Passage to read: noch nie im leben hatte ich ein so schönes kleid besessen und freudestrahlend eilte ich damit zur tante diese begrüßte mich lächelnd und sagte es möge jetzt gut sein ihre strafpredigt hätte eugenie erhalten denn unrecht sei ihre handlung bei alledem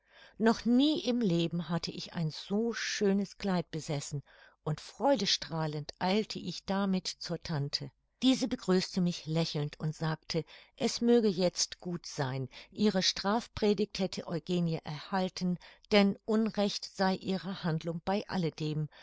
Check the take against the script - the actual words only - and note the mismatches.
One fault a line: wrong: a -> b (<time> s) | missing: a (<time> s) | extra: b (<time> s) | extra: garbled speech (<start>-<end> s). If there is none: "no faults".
no faults